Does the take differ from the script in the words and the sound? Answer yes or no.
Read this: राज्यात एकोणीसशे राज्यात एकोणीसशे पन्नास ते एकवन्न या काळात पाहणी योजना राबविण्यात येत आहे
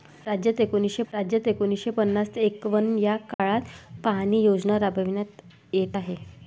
yes